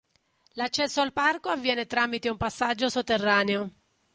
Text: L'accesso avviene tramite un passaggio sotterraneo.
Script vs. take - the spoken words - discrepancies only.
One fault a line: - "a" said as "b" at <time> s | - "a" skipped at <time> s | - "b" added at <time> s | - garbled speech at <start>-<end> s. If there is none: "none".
- "al parco" added at 1.0 s